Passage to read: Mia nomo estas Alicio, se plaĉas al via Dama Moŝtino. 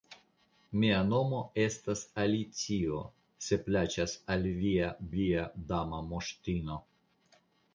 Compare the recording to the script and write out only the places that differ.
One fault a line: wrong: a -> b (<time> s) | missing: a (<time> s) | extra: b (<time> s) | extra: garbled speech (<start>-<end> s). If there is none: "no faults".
extra: via (5.2 s)